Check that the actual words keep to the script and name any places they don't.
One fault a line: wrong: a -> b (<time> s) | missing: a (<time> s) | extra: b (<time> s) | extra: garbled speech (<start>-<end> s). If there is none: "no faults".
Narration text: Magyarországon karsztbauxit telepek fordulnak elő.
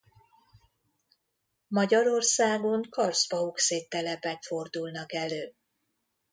no faults